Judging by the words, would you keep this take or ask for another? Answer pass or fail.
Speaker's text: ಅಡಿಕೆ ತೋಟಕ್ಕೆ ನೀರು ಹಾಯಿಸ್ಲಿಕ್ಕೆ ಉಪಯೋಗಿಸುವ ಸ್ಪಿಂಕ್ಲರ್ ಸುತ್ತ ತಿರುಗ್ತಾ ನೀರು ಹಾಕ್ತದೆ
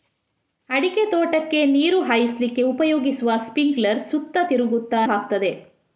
fail